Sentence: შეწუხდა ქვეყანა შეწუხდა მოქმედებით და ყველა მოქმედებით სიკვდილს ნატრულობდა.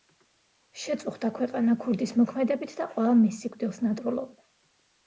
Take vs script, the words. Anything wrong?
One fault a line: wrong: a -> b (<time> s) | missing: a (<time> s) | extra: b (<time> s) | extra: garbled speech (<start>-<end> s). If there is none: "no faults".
wrong: შეწუხდა -> ქურდის (1.9 s)
wrong: მოქმედებით -> მის (3.2 s)